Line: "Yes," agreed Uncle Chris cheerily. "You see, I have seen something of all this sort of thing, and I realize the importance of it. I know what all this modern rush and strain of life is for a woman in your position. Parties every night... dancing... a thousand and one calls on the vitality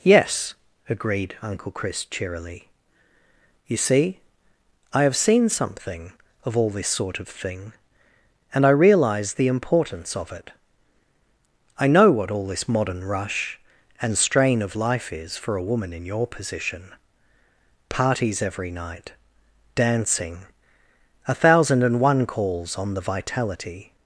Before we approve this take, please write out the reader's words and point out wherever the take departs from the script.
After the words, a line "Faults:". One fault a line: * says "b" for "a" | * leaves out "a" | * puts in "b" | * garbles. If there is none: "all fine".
"Yes," agreed Uncle Chris cheerily. "You see, I have seen something of all this sort of thing, and I realize the importance of it. I know what all this modern rush and strain of life is for a woman in your position. Parties every night... dancing... a thousand and one calls on the vitality
Faults:
all fine